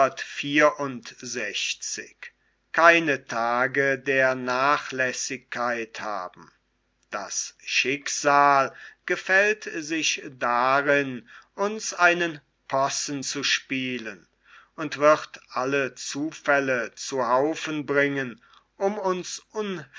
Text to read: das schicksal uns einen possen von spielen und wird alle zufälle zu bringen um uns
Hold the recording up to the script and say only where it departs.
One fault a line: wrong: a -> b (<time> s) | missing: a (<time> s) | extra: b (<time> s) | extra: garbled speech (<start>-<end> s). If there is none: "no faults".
extra: gefällt sich darin (9.1 s)
wrong: von -> zu (13.2 s)
extra: haufen (17.3 s)